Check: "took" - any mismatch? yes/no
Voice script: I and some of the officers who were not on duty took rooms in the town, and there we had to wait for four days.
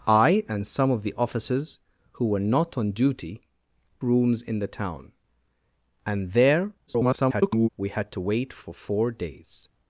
yes